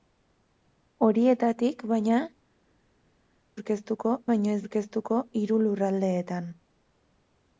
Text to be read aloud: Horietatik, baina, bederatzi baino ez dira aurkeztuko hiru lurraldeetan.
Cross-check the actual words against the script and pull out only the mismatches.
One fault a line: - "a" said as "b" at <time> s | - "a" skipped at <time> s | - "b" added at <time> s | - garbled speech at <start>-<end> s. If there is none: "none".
- "bederatzi" said as "aurkeztuko" at 3.6 s
- "dira" skipped at 4.6 s